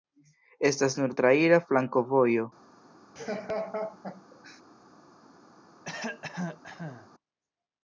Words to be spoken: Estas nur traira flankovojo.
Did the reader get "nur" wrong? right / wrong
right